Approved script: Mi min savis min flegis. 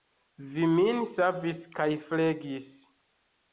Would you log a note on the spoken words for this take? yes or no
yes